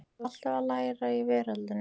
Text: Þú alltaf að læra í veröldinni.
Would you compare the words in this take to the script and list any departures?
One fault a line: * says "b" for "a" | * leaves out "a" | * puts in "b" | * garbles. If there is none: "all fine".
all fine